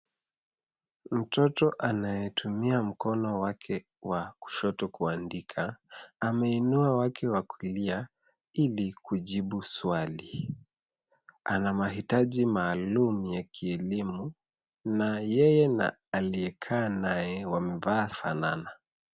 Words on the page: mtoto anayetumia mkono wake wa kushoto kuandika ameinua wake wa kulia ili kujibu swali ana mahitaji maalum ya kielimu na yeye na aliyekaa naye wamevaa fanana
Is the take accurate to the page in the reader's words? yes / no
yes